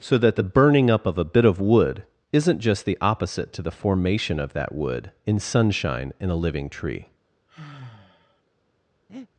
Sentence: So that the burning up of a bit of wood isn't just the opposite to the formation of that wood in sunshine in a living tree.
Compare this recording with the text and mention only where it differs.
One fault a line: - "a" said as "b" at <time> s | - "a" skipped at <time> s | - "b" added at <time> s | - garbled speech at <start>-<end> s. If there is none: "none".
none